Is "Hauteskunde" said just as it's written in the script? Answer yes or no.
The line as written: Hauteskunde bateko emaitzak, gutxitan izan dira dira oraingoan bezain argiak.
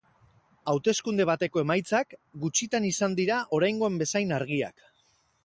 yes